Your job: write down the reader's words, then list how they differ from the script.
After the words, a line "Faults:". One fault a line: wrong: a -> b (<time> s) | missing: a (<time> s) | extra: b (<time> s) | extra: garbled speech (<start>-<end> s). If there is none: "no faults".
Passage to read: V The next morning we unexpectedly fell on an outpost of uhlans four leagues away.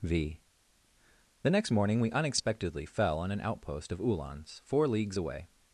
V The next morning we unexpectedly fell on an outpost of uhlans four leagues away.
Faults:
no faults